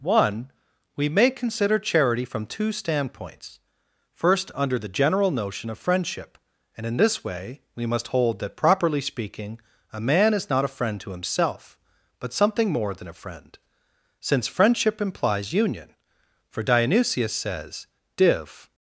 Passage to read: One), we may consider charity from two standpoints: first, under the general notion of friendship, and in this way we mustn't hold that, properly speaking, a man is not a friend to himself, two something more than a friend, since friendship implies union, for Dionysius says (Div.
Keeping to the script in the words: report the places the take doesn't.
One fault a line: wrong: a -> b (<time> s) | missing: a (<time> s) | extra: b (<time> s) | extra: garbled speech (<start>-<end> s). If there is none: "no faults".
wrong: mustn't -> must (7.8 s)
wrong: two -> but (12.2 s)